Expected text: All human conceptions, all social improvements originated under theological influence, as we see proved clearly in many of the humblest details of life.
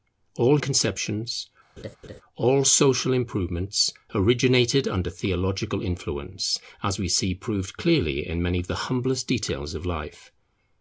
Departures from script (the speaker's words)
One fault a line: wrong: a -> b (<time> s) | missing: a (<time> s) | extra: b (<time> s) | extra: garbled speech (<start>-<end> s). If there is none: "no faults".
missing: human (0.6 s)